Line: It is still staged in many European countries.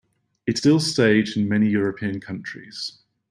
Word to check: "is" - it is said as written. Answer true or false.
false